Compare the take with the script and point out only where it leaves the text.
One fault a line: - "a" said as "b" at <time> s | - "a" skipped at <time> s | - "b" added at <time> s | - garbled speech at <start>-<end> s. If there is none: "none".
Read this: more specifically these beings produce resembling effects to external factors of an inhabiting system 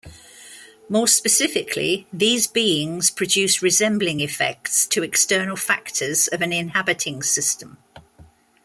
none